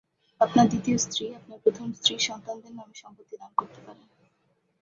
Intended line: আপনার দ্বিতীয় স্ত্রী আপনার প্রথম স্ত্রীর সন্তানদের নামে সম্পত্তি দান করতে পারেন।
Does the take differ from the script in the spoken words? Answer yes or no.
no